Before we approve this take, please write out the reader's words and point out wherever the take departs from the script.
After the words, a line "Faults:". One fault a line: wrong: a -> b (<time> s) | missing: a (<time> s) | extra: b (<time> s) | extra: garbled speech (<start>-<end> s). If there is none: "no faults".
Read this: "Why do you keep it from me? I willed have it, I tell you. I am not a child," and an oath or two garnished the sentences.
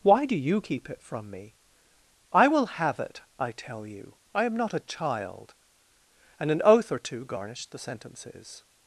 "Why do you keep it from me? I will have it, I tell you. I am not a child," and an oath or two garnished the sentences.
Faults:
wrong: willed -> will (2.5 s)